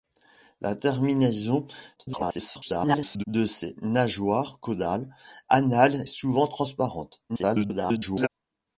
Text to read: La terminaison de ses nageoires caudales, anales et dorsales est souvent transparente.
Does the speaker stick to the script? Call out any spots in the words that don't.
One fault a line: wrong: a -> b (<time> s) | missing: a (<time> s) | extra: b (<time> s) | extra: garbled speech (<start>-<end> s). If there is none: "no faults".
extra: garbled speech (2.0-3.2 s)
missing: et dorsales est (6.0 s)
extra: garbled speech (7.3-8.3 s)